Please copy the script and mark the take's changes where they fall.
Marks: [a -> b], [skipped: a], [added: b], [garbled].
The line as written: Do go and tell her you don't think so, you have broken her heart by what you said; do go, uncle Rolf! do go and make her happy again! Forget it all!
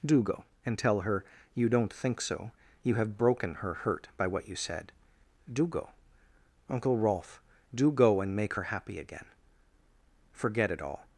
Do go and tell her you don't think so, you have broken her [heart -> hurt] by what you said; do go, uncle Rolf! do go and make her happy again! Forget it all!